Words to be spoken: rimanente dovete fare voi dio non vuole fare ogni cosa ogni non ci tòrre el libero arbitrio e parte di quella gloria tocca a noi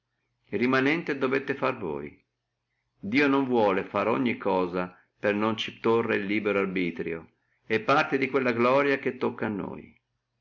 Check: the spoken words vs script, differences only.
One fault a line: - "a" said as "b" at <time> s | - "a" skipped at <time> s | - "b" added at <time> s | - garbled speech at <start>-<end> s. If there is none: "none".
- "ogni" said as "per" at 5.2 s
- "che" added at 9.0 s